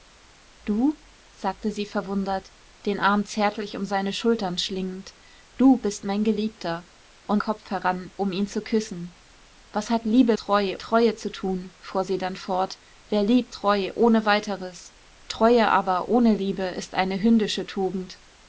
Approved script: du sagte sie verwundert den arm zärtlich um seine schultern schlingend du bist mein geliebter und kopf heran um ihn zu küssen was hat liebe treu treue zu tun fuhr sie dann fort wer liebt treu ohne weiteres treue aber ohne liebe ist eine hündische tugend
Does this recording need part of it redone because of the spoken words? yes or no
no